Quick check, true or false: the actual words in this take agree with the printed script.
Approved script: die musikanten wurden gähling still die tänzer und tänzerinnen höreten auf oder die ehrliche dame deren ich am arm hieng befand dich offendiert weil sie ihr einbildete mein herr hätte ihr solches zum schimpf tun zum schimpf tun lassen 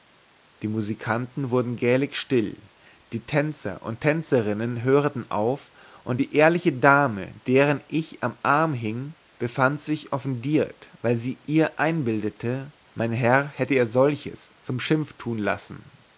false